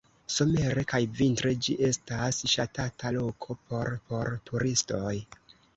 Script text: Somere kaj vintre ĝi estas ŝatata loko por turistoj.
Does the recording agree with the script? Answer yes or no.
no